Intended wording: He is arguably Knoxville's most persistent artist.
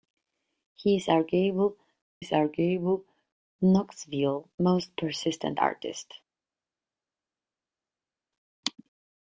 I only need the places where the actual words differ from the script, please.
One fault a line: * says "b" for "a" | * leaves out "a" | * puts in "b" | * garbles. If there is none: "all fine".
* puts in "is arguably"